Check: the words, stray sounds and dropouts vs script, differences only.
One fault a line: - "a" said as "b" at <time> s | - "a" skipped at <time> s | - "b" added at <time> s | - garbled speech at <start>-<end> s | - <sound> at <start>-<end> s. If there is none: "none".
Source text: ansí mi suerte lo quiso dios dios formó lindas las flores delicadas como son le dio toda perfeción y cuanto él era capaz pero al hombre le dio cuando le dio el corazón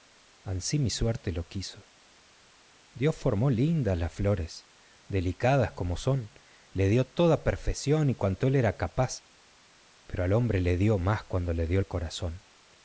- "dios" skipped at 3.1 s
- "más" added at 11.0 s